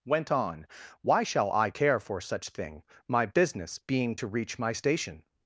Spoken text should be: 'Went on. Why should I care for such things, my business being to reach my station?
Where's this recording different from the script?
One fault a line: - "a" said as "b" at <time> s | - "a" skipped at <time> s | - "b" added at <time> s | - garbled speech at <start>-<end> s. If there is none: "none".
- "should" said as "shall" at 1.2 s
- "things" said as "thing" at 2.5 s